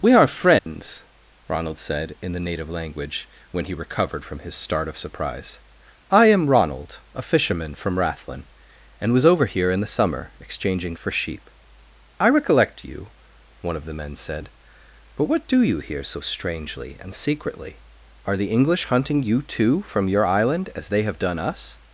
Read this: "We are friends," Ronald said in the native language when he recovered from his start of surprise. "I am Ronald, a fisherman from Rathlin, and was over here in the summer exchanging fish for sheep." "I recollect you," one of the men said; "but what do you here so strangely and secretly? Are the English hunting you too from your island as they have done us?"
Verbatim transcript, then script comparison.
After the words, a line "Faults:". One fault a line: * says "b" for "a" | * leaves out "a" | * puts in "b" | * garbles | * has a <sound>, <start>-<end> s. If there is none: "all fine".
"We are friends," Ronald said in the native language when he recovered from his start of surprise. "I am Ronald, a fisherman from Rathlin, and was over here in the summer exchanging for sheep." "I recollect you," one of the men said; "but what do you here so strangely and secretly? Are the English hunting you too from your island as they have done us?"
Faults:
* has a dropout, 0.6-0.7 s
* leaves out "fish"